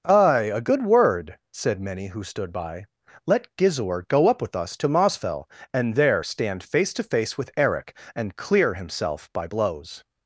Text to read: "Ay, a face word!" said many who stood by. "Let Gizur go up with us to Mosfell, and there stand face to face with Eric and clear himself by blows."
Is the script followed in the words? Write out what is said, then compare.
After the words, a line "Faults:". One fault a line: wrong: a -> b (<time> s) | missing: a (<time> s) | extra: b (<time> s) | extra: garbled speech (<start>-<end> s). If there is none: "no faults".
"Ay, a good word!" said many who stood by. "Let Gizur go up with us to Mosfell, and there stand face to face with Eric and clear himself by blows."
Faults:
wrong: face -> good (0.6 s)